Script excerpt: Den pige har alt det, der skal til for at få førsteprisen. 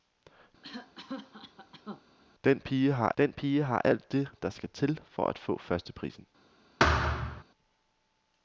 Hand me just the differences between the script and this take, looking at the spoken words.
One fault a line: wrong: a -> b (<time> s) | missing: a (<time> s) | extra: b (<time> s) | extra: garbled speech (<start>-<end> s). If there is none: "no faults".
extra: den pige har (3.2 s)